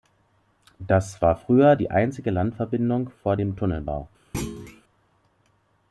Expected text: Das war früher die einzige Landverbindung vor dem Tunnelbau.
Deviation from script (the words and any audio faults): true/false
true